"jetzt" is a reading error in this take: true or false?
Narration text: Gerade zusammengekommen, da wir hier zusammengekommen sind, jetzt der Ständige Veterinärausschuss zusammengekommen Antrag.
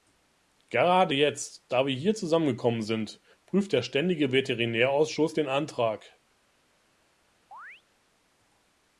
true